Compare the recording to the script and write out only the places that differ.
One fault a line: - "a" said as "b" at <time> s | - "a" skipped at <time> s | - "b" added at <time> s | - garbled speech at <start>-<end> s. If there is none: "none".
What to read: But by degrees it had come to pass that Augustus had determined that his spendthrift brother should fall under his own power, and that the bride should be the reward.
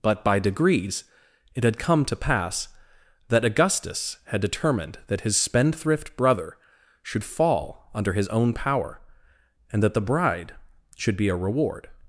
- "the" said as "a" at 11.3 s